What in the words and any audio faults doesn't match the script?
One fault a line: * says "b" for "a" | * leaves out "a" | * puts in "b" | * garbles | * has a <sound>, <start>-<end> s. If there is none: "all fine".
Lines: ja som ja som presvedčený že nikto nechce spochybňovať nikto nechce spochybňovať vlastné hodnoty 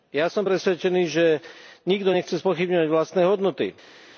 * leaves out "ja som"
* leaves out "nikto nechce spochybňovať"